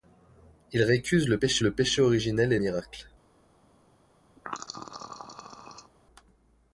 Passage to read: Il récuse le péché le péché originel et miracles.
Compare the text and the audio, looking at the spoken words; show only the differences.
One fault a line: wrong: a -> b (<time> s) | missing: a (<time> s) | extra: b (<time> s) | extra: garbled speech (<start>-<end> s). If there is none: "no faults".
no faults